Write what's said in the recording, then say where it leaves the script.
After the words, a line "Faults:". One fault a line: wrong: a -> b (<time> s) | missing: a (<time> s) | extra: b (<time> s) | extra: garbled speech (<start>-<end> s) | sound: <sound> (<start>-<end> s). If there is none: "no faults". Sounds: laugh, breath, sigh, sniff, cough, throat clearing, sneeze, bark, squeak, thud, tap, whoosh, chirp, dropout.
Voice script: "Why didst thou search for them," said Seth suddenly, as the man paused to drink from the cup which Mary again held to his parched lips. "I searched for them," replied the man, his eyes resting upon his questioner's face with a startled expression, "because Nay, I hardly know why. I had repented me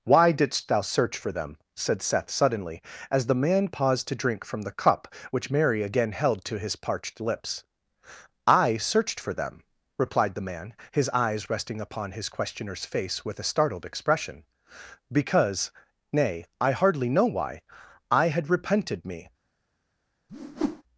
"Why didst thou search for them," said Seth suddenly, as the man paused to drink from the cup which Mary again held to his parched lips. "I searched for them," replied the man, his eyes resting upon his questioner's face with a startled expression, "because Nay, I hardly know why. I had repented me
Faults:
sound: whoosh (20.3-20.8 s)